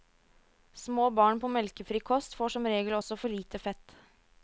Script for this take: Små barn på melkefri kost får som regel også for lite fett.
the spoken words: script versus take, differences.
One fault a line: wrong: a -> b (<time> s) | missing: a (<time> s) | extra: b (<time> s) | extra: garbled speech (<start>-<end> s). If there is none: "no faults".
no faults